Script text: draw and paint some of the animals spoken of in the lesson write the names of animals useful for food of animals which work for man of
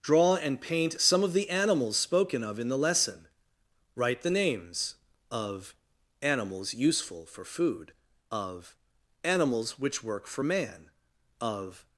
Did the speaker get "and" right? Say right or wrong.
right